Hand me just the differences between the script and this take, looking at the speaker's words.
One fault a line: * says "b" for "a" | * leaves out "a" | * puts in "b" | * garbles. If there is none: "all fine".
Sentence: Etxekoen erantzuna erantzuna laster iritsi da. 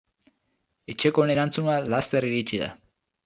* leaves out "erantzuna"